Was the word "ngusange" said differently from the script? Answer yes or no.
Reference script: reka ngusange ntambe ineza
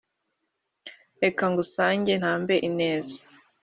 no